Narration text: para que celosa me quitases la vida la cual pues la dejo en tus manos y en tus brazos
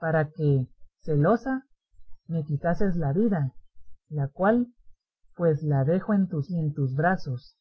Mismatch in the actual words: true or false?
true